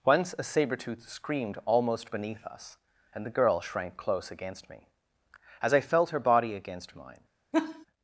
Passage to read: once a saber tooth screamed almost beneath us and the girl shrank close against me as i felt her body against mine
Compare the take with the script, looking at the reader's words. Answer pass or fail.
pass